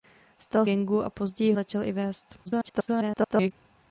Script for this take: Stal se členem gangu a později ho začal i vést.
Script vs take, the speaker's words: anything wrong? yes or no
yes